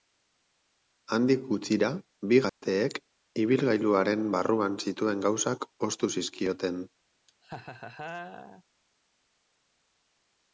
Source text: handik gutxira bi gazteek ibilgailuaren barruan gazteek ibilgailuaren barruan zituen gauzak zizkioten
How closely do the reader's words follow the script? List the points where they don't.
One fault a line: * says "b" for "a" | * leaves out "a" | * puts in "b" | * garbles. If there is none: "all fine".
* leaves out "gazteek ibilgailuaren barruan"
* puts in "ostu"